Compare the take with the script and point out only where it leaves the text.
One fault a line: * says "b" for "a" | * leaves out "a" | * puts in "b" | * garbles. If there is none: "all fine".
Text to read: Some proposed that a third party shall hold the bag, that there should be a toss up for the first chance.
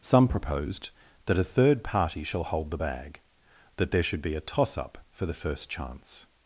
all fine